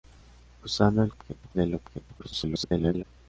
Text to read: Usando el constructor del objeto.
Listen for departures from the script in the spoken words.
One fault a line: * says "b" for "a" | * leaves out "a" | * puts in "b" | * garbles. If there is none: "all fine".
* says "objeto" for "constructor"
* garbles